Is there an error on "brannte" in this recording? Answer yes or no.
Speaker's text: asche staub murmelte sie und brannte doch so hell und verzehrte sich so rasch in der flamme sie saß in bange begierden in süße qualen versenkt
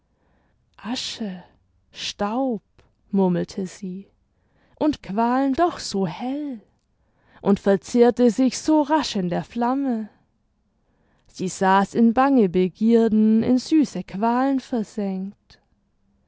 yes